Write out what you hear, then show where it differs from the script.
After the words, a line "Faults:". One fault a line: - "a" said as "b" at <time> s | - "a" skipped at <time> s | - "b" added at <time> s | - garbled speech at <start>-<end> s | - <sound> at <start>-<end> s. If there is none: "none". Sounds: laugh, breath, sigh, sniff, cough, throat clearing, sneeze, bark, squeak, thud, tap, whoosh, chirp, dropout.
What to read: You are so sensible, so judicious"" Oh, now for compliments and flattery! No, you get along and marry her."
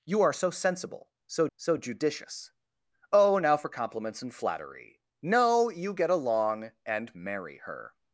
You are so sensible, so so judicious"" Oh, now for compliments and flattery! No, you get along and marry her."
Faults:
- "so" added at 1.6 s